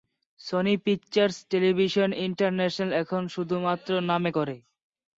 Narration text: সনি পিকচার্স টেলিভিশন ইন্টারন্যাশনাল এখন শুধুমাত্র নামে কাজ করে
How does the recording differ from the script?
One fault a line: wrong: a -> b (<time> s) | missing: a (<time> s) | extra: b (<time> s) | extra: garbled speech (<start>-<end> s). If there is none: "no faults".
missing: কাজ (4.3 s)